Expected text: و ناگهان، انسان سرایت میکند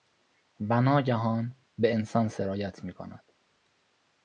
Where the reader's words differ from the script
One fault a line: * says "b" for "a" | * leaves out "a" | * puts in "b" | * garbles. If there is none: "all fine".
* puts in "به"